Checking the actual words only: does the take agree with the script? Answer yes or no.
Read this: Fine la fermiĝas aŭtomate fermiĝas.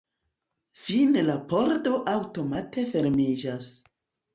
no